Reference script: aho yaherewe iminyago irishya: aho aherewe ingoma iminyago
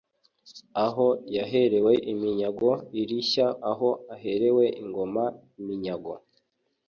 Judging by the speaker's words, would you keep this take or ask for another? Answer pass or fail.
pass